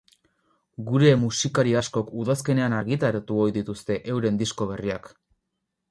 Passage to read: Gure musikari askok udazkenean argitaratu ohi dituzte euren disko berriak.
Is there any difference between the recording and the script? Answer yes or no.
no